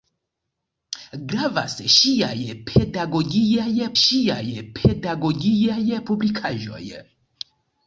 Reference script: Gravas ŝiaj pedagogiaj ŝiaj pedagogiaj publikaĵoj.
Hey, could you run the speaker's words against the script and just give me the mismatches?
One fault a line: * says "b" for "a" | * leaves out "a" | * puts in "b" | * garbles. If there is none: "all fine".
all fine